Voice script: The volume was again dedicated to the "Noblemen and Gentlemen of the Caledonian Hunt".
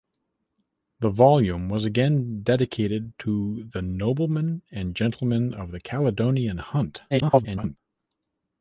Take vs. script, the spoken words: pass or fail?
fail